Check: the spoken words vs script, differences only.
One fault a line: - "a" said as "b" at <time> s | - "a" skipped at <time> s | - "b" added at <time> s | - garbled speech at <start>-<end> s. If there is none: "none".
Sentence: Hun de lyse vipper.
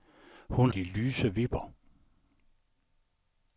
none